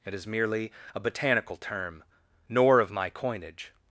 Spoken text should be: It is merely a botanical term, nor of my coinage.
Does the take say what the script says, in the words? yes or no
yes